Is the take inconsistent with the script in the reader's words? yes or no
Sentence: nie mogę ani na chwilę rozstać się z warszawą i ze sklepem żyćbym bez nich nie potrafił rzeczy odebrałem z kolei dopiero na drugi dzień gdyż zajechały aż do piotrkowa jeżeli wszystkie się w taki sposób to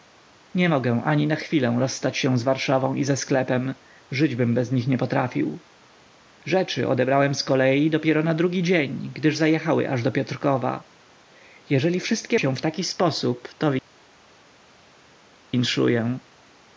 no